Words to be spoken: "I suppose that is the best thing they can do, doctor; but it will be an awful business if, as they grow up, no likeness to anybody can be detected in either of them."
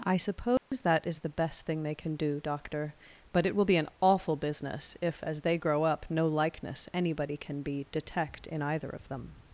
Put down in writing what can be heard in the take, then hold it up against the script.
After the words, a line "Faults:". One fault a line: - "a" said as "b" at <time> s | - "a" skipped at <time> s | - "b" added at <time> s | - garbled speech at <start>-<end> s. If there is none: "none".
"I suppose that is the best thing they can do, doctor; but it will be an awful business if, as they grow up, no likeness anybody can be detect in either of them."
Faults:
- "to" skipped at 6.9 s
- "detected" said as "detect" at 7.9 s